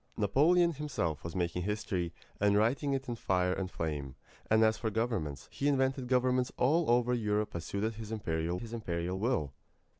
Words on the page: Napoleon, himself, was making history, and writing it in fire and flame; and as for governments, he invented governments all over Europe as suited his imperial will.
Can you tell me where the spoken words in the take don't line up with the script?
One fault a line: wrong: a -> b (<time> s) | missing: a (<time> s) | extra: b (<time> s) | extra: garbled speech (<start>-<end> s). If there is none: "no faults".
extra: his imperial (8.6 s)